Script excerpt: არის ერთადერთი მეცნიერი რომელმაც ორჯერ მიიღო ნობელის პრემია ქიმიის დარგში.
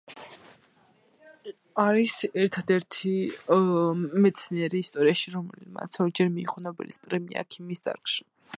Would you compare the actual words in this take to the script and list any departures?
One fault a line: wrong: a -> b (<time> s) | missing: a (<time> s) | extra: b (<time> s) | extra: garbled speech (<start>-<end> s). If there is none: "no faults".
extra: ისტორიაში (4.9 s)